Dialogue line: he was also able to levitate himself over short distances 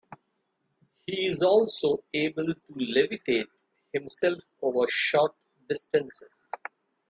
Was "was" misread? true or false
true